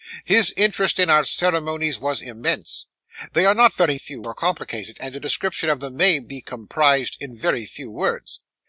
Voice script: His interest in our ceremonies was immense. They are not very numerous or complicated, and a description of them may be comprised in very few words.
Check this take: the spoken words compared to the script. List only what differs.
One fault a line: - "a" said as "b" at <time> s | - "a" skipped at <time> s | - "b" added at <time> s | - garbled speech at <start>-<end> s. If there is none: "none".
- "numerous" said as "few" at 4.0 s